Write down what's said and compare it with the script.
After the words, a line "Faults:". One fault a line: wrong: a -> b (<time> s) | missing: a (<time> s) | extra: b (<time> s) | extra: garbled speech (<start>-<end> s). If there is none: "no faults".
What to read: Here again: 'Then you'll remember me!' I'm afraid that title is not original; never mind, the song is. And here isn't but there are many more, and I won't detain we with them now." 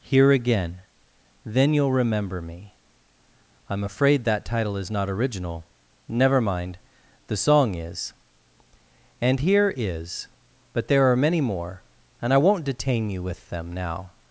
Here again: 'Then you'll remember me!' I'm afraid that title is not original; never mind, the song is. And here is but there are many more, and I won't detain you with them now."
Faults:
wrong: isn't -> is (9.7 s)
wrong: we -> you (13.1 s)